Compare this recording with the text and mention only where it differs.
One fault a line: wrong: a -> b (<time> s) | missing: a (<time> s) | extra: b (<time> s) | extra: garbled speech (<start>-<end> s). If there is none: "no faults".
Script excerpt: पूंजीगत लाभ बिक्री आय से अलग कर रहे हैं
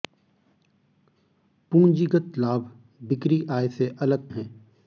missing: कर रहे (4.3 s)